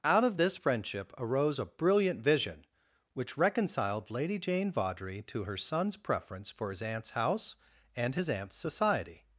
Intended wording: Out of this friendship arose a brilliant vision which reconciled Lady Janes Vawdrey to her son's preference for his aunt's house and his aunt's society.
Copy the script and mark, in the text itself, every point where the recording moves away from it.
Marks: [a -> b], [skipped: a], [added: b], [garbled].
Out of this friendship arose a brilliant vision which reconciled Lady [Janes -> Jane] Vawdrey to her son's preference for his aunt's house and his aunt's society.